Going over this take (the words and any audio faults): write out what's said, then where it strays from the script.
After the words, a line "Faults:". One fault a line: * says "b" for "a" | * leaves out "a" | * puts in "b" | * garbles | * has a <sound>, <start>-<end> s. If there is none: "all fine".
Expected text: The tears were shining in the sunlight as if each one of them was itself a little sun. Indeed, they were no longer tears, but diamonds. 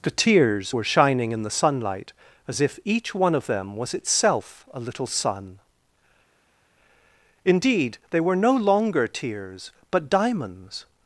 The tears were shining in the sunlight as if each one of them was itself a little sun. Indeed, they were no longer tears, but diamonds.
Faults:
all fine